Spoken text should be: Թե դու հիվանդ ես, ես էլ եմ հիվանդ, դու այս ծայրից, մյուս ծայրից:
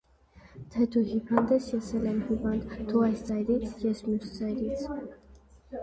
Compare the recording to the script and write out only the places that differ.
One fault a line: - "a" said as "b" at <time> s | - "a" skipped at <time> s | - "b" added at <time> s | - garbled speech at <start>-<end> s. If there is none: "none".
- "ես" added at 3.9 s